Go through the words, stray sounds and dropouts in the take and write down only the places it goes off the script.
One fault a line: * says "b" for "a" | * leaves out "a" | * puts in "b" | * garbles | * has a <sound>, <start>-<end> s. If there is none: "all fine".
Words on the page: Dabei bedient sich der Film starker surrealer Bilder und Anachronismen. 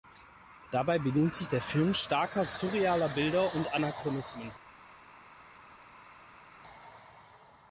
all fine